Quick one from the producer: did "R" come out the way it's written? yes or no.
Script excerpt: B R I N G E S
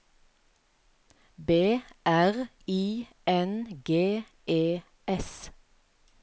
yes